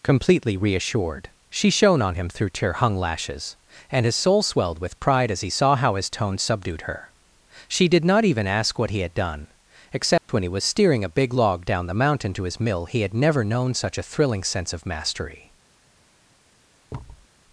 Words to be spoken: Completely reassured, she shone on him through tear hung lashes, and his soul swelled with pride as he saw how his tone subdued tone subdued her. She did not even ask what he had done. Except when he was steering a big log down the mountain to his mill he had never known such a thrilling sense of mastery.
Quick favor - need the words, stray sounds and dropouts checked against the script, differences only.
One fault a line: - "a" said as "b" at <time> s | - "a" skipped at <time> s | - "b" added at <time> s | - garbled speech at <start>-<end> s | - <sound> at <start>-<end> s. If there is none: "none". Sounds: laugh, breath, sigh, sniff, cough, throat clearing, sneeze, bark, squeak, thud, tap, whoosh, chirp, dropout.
- "tone subdued" skipped at 6.8 s
- dropout at 10.2-10.3 s
- thud at 16.9-17.3 s